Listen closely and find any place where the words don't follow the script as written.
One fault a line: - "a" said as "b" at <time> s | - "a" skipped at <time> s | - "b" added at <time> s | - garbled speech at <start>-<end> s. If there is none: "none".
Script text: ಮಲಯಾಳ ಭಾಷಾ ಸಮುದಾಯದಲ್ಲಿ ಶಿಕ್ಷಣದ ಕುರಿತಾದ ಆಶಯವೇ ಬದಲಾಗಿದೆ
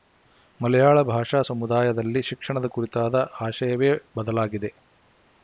none